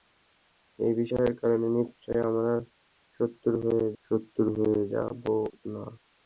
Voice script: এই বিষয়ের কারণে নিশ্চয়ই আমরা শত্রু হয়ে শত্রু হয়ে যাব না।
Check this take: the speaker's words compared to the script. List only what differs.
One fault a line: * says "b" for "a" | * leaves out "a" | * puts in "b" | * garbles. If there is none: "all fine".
all fine